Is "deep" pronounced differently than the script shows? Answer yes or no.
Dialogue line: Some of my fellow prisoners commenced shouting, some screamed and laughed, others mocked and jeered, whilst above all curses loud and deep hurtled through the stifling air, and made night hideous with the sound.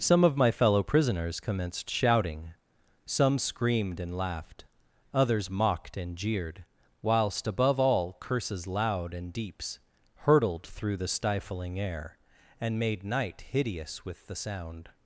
yes